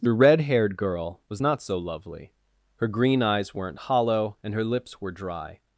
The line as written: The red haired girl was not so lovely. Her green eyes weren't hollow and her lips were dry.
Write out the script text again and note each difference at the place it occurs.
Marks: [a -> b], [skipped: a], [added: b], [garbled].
The red haired girl was not so lovely. Her green eyes weren't hollow and her lips were dry.